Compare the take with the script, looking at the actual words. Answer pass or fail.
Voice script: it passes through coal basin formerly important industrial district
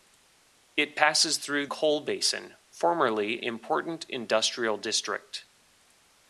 pass